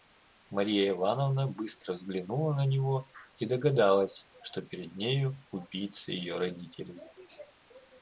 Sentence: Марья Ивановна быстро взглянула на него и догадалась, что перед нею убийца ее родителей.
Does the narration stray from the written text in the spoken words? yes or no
no